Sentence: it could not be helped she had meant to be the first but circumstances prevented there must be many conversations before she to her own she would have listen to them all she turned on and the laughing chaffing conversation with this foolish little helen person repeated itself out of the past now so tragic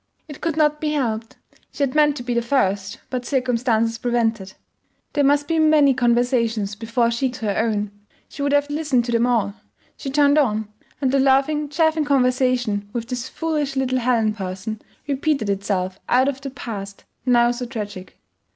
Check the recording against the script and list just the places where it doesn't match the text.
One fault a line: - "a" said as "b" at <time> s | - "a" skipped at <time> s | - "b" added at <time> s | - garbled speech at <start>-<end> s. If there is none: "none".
none